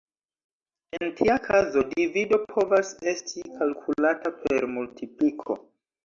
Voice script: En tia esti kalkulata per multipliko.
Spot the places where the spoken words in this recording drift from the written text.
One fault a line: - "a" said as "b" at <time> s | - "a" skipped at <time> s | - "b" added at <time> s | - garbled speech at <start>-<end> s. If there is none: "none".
- "kazo divido povas" added at 1.5 s